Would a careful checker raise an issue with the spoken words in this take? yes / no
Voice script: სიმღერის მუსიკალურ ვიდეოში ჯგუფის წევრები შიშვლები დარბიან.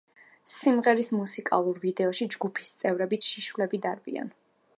no